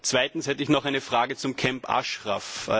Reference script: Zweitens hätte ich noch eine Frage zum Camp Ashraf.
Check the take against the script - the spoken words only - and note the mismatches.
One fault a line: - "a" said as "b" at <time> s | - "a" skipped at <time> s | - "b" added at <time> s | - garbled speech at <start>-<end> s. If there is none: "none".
none